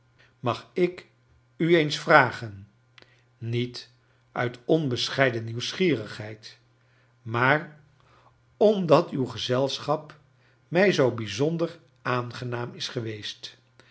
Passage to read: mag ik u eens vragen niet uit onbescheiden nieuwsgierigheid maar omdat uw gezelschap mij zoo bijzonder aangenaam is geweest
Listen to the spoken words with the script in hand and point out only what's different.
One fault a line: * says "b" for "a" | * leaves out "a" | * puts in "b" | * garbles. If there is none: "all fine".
all fine